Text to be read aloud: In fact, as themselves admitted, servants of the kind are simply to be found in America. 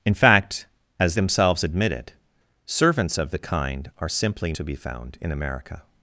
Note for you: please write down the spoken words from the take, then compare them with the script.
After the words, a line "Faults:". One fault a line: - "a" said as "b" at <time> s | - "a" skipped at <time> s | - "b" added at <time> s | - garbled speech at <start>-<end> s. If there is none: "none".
In fact, as themselves admitted, servants of the kind are simply to be found in America.
Faults:
none